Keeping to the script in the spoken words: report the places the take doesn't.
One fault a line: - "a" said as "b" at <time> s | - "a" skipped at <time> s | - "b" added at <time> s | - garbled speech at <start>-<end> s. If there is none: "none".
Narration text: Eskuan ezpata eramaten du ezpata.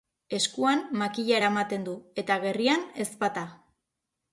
- "ezpata" said as "makila" at 1.0 s
- "eta gerrian" added at 2.2 s